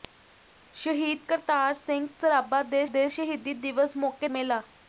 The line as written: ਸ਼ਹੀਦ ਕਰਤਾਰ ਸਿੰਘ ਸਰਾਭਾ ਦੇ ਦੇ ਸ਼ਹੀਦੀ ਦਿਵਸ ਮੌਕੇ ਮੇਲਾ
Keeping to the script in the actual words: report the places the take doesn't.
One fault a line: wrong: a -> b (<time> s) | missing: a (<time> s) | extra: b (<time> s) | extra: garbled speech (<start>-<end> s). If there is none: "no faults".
no faults